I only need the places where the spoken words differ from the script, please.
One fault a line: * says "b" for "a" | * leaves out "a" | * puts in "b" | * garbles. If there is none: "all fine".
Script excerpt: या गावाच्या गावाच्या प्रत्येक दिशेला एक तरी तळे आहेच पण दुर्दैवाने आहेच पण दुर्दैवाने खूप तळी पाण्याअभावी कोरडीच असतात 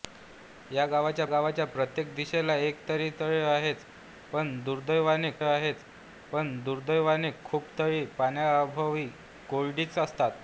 all fine